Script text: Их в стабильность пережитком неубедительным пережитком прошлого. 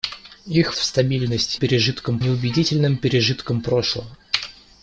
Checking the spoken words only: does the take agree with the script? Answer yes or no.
yes